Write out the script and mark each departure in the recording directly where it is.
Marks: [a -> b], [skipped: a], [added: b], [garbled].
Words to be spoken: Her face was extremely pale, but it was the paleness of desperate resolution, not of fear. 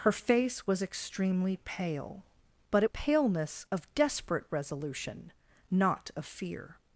Her face was extremely pale, but it [skipped: was the] paleness of desperate resolution, not of fear.